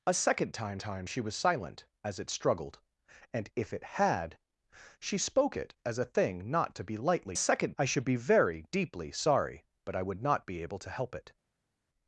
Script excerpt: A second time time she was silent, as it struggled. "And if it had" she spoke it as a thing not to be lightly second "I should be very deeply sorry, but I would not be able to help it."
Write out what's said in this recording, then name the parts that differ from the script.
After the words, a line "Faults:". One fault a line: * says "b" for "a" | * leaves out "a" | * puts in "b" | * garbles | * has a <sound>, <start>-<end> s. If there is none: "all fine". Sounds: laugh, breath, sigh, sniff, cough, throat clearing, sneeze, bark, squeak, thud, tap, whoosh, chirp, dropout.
A second time time she was silent, as it struggled. "And if it had" she spoke it as a thing not to be lightly second "I should be very deeply sorry, but I would not be able to help it."
Faults:
all fine